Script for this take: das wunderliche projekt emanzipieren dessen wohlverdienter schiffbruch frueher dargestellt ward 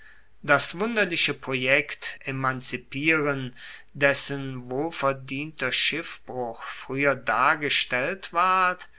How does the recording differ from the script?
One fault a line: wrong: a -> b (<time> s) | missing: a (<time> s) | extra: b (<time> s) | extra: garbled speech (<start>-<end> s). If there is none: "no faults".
no faults